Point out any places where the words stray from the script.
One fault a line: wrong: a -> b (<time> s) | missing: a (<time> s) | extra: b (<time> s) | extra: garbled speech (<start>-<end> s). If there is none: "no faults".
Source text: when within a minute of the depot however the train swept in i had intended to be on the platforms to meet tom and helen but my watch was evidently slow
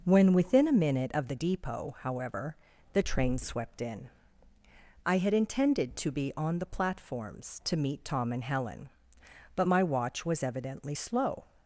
no faults